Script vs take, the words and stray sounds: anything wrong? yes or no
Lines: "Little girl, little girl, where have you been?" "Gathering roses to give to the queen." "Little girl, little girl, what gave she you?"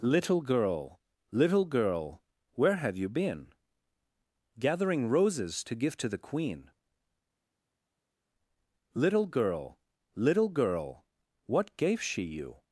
no